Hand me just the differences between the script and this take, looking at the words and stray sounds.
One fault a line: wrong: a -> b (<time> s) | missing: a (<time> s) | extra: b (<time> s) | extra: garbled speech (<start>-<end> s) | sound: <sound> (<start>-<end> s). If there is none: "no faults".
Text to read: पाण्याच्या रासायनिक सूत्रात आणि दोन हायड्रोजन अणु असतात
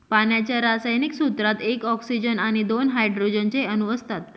extra: एक ऑक्सीजन (1.6 s)
extra: चे (3.5 s)